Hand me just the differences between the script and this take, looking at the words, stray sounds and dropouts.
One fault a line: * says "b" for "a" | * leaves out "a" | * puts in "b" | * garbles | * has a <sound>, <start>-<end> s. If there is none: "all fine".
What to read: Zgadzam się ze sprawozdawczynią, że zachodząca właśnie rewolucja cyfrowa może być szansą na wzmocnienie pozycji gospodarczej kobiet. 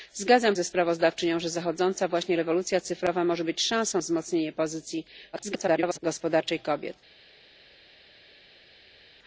* leaves out "się"
* leaves out "na"
* garbles